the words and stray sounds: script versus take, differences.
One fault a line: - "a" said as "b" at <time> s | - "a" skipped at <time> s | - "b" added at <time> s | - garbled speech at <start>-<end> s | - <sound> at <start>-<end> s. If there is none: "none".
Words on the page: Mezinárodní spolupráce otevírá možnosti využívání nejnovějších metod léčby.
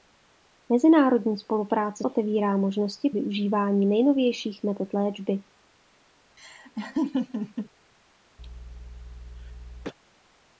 - laugh at 6.4-7.7 s
- cough at 8.4-9.9 s